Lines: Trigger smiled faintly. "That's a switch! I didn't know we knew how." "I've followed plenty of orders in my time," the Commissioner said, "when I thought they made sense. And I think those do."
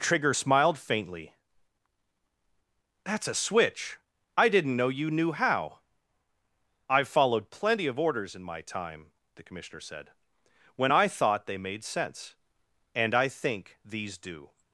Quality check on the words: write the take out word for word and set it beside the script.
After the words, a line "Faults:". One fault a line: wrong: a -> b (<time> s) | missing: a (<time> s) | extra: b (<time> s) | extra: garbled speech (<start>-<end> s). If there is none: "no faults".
Trigger smiled faintly. "That's a switch! I didn't know you knew how." "I've followed plenty of orders in my time," the Commissioner said, "when I thought they made sense. And I think these do."
Faults:
wrong: we -> you (4.9 s)
wrong: those -> these (13.8 s)